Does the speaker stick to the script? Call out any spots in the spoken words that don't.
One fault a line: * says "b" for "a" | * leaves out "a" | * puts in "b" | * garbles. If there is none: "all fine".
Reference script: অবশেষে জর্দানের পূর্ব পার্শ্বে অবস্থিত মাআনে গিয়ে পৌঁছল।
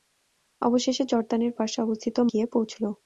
* leaves out "পূর্ব"
* leaves out "মাআনে"